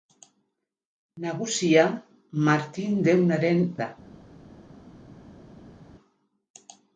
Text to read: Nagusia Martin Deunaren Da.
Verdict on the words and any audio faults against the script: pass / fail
pass